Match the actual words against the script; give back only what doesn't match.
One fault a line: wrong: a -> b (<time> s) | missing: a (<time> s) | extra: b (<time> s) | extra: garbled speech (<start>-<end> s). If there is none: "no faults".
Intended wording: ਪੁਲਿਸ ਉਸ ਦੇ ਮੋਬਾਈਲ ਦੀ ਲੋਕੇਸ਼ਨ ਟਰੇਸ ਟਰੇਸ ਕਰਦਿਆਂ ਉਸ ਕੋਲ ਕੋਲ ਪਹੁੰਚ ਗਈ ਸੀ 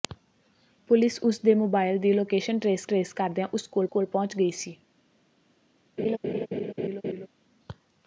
no faults